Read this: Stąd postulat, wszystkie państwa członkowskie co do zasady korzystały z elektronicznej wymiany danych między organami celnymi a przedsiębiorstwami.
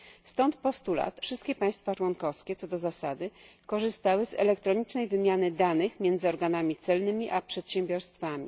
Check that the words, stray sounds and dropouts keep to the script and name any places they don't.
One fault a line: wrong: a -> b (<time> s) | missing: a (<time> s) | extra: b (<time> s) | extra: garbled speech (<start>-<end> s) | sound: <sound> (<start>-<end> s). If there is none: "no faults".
no faults